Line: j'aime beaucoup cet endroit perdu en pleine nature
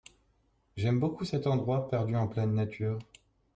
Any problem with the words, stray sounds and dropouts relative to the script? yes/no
no